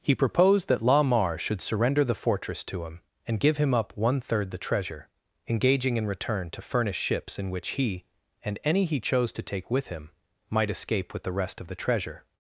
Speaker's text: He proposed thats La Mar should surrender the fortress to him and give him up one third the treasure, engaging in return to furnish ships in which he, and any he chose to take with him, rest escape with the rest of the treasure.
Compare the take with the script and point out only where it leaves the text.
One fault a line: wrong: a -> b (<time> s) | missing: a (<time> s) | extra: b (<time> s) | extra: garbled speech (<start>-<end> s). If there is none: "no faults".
wrong: thats -> that (0.7 s)
wrong: rest -> might (10.5 s)